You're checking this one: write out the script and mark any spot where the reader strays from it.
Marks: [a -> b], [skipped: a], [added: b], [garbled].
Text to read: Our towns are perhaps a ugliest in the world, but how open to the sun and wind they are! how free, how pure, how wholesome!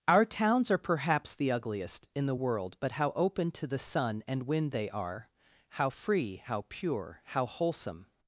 Our towns are perhaps [a -> the] ugliest in the world, but how open to the sun and wind they are! how free, how pure, how wholesome!